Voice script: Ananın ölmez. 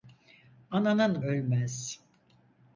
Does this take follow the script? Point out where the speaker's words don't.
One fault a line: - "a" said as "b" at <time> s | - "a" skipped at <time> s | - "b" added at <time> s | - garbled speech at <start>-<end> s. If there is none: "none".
none